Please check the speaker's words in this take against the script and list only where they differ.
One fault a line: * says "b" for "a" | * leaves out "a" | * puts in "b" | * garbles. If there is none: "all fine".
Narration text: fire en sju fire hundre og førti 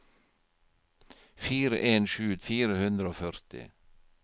all fine